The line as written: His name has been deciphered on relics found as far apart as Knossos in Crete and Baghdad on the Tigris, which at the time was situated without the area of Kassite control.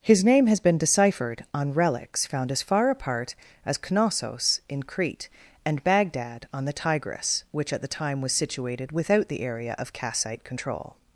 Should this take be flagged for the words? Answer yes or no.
no